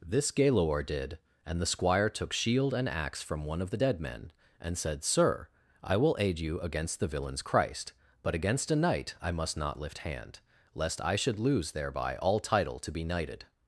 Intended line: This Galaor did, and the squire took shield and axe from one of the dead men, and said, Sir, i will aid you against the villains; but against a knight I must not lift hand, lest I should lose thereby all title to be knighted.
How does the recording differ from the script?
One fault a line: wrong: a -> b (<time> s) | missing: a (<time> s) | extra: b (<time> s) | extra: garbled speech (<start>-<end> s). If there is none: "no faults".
extra: christ (7.4 s)